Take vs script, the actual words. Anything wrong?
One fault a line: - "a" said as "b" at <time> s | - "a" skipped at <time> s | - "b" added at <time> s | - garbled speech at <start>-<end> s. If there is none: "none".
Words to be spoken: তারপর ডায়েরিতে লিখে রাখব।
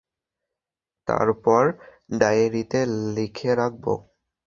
none